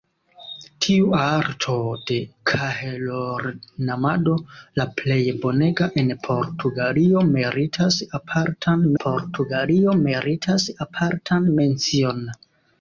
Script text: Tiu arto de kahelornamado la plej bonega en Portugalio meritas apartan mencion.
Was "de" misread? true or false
false